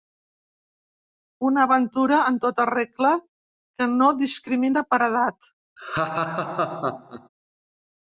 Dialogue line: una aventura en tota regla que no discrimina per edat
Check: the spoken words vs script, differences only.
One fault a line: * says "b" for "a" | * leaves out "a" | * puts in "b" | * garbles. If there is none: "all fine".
all fine